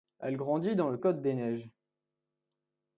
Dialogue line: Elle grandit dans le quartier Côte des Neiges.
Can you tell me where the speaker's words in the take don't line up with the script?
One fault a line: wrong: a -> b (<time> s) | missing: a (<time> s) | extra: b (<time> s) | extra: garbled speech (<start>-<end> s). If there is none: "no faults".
missing: quartier (1.0 s)